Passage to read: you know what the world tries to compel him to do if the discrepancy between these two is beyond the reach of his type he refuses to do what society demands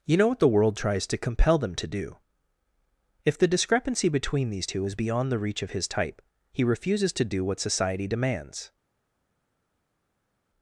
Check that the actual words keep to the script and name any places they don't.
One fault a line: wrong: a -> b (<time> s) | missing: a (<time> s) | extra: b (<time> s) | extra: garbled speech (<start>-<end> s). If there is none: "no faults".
wrong: him -> them (1.6 s)